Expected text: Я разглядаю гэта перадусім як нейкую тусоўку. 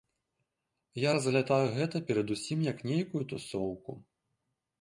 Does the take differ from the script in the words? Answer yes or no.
no